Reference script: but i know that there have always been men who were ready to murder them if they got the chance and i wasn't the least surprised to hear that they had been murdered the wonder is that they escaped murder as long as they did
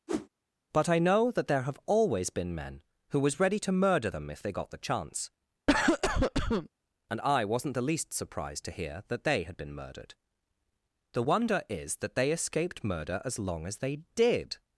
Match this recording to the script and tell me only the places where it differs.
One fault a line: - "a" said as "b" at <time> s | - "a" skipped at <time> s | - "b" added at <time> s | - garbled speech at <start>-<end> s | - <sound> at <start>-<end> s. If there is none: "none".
- whoosh at 0.1-0.3 s
- "were" said as "was" at 3.2 s
- cough at 5.7-6.7 s